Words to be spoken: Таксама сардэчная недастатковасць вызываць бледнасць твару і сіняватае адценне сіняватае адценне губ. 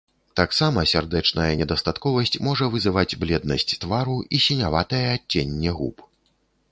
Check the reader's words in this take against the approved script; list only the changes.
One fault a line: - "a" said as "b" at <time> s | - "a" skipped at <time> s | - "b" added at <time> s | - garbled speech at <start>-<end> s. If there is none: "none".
- "можа" added at 2.5 s
- "сіняватае адценне" skipped at 5.7 s